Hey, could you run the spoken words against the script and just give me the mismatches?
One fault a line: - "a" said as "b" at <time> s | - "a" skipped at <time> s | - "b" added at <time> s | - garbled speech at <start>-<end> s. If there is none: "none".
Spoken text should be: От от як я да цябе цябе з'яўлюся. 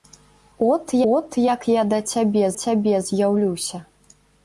none